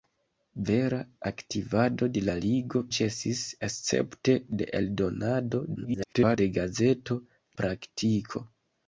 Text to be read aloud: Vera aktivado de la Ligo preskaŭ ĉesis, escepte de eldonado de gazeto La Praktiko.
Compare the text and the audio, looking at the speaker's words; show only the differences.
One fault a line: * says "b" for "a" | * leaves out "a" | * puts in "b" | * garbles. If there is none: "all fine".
* leaves out "preskaŭ"
* garbles
* leaves out "La"